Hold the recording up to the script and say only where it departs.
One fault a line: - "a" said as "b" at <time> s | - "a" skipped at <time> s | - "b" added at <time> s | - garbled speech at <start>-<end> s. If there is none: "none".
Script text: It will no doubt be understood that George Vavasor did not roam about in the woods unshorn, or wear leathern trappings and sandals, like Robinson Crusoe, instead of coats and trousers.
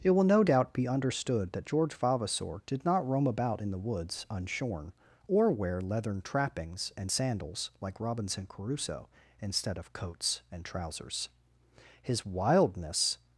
- "His wildness" added at 12.0 s